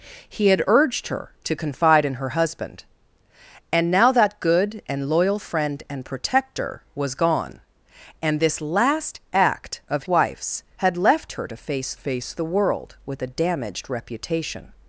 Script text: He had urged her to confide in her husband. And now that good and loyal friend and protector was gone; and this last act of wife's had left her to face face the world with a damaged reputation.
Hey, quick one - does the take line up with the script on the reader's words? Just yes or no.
yes